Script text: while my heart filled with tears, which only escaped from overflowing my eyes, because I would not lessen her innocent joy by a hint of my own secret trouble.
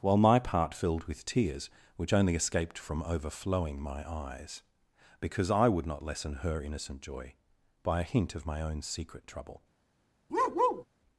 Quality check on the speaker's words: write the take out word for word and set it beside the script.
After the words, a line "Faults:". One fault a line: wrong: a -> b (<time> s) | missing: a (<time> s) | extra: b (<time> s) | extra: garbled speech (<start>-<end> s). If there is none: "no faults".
while my part filled with tears, which only escaped from overflowing my eyes, because I would not lessen her innocent joy by a hint of my own secret trouble.
Faults:
wrong: heart -> part (0.4 s)